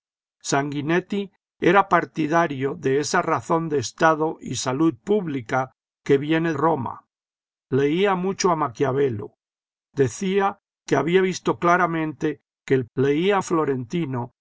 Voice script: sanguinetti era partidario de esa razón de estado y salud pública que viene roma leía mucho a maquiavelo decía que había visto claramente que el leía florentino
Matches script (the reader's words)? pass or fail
pass